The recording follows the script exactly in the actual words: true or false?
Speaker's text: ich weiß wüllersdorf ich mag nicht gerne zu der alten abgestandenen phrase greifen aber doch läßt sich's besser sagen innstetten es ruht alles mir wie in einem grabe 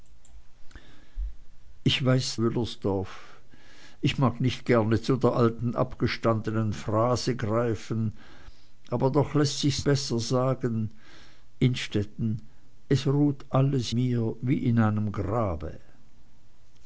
true